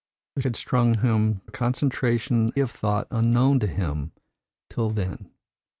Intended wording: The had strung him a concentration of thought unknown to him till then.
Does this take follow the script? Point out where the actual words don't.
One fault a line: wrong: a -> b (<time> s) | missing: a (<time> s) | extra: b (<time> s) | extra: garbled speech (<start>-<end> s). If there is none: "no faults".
no faults